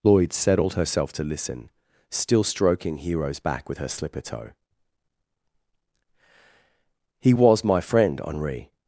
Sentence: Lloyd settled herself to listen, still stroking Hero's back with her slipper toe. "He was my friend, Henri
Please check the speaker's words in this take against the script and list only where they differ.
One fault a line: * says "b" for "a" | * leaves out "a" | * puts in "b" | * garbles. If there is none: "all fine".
all fine